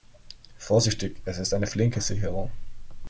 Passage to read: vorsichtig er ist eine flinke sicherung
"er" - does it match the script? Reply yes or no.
no